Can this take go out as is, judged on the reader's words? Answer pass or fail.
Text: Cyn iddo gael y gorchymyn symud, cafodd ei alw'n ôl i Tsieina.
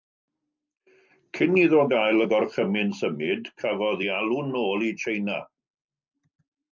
pass